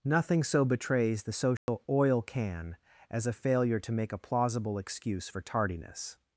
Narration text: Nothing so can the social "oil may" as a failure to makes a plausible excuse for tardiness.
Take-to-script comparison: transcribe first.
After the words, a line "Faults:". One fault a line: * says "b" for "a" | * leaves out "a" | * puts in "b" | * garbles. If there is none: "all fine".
Nothing so betrays the social "oil can" as a failure to make a plausible excuse for tardiness.
Faults:
* says "betrays" for "can"
* says "can" for "may"
* says "make" for "makes"